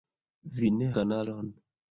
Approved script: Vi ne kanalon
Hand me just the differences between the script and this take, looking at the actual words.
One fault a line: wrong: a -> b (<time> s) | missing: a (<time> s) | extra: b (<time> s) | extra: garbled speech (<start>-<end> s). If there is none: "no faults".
no faults